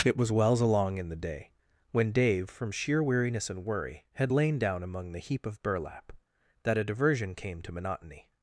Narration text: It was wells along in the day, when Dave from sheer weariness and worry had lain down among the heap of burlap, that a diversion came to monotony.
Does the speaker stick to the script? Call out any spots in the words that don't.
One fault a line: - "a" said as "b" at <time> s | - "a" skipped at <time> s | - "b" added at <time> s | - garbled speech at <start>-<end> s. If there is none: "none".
none